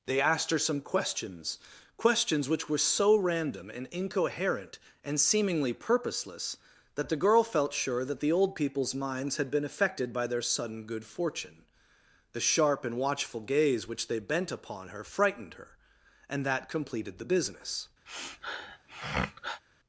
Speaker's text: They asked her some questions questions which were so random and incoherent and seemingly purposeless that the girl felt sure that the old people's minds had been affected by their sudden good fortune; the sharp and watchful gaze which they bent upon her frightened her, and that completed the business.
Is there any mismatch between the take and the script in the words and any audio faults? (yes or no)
yes